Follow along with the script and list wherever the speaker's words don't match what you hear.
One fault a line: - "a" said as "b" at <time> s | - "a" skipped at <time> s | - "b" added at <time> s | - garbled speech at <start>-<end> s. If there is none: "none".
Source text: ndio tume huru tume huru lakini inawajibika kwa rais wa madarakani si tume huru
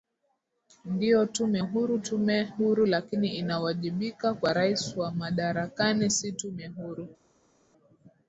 none